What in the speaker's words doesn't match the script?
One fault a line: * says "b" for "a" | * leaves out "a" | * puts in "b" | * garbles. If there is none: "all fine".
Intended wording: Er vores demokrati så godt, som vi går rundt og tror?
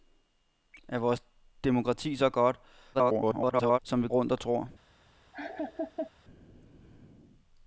* garbles
* leaves out "går"